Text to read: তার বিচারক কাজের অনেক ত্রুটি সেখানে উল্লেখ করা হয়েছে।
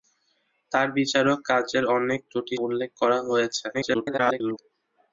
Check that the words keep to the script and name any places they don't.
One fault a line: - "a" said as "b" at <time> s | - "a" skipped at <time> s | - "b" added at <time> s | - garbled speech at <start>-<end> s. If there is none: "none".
- "সেখানে" skipped at 2.5 s
- garbled speech at 3.7-4.6 s